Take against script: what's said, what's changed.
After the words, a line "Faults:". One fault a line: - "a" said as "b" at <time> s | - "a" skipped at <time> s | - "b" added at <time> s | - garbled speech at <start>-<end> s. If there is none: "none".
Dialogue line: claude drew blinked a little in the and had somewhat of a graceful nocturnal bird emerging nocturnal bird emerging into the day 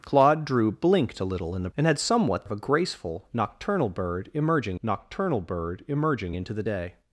claude drew blinked a little in the and had somewhat of a graceful nocturnal bird emerging nocturnal bird emerging into the day
Faults:
none